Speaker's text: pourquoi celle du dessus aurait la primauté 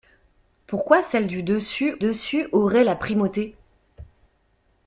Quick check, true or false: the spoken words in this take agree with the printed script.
false